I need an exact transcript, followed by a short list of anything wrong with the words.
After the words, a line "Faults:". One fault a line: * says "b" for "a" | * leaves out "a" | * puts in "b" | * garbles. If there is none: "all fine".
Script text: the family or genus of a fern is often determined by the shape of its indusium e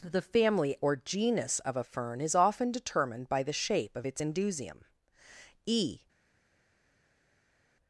the family or genus of a fern is often determined by the shape of its indusium e
Faults:
all fine